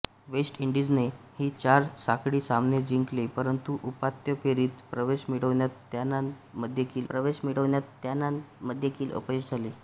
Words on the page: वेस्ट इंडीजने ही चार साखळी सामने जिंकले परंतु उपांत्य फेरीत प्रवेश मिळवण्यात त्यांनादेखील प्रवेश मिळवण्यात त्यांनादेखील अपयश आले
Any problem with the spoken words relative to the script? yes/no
no